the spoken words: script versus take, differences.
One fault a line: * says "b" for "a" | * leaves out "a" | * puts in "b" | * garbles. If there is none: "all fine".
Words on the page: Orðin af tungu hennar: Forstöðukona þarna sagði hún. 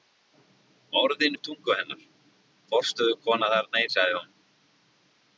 all fine